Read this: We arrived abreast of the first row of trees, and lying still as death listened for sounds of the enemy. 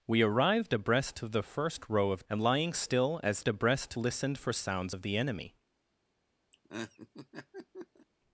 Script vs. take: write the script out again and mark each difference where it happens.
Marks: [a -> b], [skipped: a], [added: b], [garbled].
We arrived abreast of the first row of [skipped: trees,] and lying still as [death -> abreast] listened for sounds of the enemy.